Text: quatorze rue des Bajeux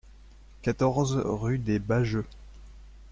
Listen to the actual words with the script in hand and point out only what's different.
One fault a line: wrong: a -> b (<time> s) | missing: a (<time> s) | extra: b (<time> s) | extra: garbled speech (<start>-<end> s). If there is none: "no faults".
no faults